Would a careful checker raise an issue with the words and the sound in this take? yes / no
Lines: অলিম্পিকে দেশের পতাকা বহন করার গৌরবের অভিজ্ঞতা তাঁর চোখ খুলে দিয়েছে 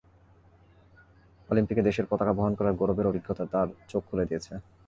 no